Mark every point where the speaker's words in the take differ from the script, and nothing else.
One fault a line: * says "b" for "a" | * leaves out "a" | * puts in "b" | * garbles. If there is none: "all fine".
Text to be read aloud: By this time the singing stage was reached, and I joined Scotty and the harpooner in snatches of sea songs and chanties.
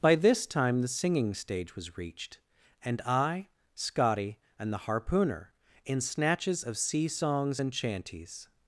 * leaves out "joined"